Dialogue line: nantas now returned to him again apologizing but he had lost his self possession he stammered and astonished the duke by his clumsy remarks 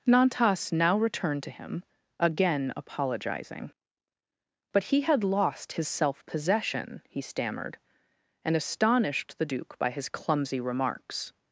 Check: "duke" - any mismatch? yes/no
no